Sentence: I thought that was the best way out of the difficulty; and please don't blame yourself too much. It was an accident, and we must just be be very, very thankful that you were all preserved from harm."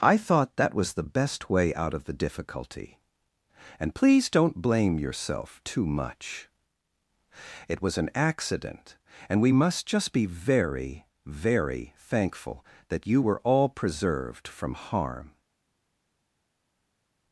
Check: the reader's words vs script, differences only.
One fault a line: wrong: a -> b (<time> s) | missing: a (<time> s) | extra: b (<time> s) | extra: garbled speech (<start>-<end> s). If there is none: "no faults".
missing: be (10.3 s)